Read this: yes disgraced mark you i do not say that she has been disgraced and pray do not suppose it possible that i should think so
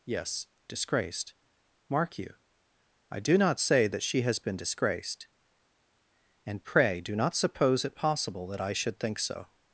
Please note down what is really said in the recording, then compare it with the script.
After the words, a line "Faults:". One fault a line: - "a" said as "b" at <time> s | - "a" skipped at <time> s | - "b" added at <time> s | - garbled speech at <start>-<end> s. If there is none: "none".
yes disgraced mark you i do not say that she has been disgraced and pray do not suppose it possible that i should think so
Faults:
none